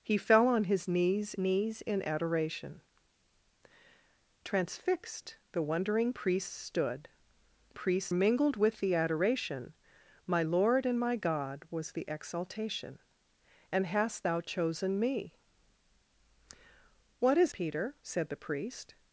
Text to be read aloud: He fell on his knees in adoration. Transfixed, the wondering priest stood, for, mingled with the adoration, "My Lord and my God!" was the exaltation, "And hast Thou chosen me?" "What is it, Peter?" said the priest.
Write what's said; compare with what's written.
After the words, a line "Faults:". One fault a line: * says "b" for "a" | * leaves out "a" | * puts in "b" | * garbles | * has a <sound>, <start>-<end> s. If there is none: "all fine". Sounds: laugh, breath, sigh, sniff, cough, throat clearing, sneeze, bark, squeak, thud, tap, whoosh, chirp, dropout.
He fell on his knees knees in adoration. Transfixed, the wondering priest stood, priest, mingled with the adoration, "My Lord and my God!" was the exaltation, "And hast Thou chosen me?" "What is Peter?" said the priest.
Faults:
* puts in "knees"
* says "priest" for "for"
* leaves out "it"